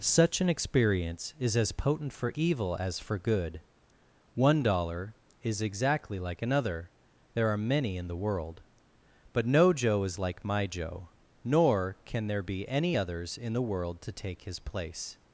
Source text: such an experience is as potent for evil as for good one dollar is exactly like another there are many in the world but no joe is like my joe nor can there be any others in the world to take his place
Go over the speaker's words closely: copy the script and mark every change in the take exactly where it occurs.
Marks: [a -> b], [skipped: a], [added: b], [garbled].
such an experience is as potent for evil as for good one dollar is exactly like another there are many in the world but no joe is like my joe nor can there be any others in the world to take his place